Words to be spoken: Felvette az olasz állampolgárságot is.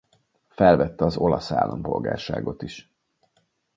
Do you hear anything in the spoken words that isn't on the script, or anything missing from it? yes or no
no